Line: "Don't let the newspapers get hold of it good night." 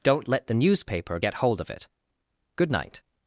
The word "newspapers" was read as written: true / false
false